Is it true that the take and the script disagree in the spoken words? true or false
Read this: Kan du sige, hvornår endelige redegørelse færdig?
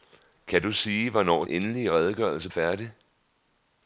false